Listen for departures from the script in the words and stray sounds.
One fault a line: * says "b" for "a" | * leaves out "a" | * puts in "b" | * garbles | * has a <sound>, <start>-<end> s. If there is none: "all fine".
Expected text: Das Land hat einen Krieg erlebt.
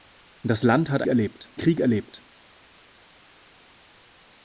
* says "erlebt" for "einen"